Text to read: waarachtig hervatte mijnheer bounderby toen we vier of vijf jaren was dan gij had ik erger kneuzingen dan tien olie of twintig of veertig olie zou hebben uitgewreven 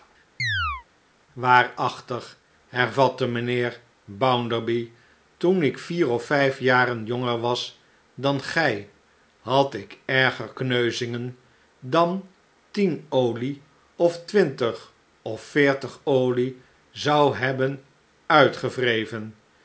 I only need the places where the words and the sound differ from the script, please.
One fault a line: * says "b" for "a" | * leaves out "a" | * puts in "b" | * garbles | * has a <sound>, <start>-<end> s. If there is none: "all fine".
* has a chirp, 0.4-0.9 s
* says "ik" for "we"
* puts in "jonger"